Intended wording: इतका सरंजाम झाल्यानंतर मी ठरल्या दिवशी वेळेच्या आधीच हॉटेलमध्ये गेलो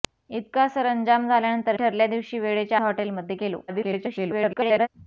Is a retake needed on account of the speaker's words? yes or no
yes